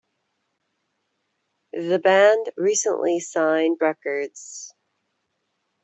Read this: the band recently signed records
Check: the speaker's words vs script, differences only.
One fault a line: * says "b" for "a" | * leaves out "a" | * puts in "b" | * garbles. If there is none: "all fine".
all fine